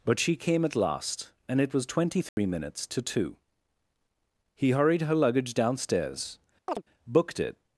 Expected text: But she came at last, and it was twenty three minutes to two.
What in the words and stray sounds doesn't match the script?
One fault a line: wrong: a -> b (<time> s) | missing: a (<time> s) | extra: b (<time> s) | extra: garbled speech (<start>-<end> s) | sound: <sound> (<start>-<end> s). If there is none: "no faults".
sound: dropout (2.3-2.4 s)
extra: He hurried her luggage downstairs booked it (4.5 s)
sound: chirp (6.7-6.8 s)